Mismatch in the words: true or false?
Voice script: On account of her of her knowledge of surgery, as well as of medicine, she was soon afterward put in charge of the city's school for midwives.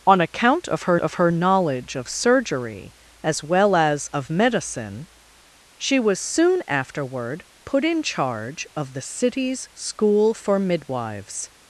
false